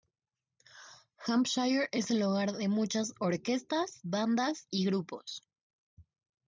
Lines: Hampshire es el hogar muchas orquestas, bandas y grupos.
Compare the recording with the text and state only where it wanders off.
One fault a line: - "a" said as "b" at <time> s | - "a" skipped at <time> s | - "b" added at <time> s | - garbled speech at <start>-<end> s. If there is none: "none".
- "de" added at 2.5 s